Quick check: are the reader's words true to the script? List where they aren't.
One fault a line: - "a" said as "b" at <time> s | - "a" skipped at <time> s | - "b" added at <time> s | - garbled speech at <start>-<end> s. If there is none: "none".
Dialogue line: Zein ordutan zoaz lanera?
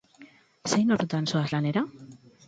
none